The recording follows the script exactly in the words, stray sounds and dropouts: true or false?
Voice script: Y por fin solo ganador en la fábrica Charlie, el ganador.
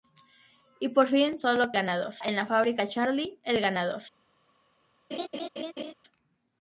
false